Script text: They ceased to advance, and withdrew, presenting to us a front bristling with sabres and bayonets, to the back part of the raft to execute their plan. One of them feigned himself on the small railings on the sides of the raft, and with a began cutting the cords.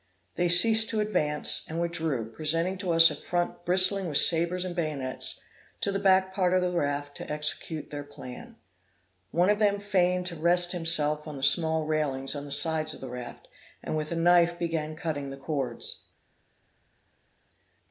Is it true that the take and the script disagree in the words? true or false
true